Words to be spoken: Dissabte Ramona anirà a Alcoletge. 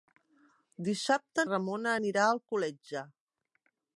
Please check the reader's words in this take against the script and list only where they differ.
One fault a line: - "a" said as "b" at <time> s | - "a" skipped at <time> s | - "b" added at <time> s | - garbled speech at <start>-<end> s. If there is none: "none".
none